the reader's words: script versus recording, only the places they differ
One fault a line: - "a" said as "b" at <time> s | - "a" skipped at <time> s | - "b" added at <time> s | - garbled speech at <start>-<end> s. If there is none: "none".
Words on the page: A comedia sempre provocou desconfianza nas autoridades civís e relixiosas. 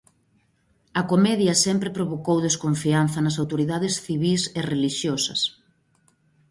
none